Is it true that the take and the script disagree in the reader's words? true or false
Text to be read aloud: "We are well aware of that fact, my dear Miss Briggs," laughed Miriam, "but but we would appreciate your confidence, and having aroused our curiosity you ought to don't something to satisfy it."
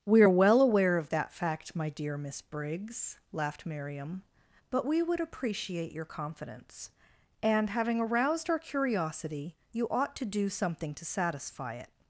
true